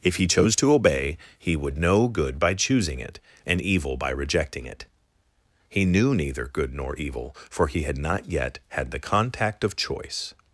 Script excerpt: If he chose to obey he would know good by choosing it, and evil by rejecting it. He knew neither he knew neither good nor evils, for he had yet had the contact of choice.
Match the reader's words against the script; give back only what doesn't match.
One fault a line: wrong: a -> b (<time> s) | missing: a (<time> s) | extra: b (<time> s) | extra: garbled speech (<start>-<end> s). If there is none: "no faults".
missing: he knew neither (6.5 s)
wrong: evils -> evil (7.0 s)
extra: not (8.0 s)